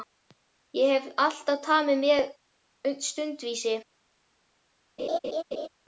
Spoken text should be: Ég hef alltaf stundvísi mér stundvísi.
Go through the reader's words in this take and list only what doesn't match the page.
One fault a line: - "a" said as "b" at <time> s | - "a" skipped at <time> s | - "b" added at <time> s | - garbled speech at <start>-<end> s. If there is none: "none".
- "stundvísi" said as "tamið" at 1.7 s